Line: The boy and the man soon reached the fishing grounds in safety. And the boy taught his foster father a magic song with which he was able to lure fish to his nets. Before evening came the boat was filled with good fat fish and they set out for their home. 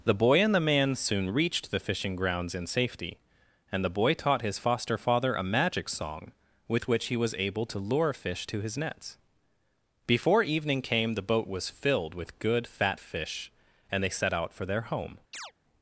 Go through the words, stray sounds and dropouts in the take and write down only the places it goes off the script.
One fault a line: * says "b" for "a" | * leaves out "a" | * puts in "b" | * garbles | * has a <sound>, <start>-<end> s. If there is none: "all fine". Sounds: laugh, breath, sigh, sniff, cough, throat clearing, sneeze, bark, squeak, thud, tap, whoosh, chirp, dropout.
* has a chirp, 15.3-15.5 s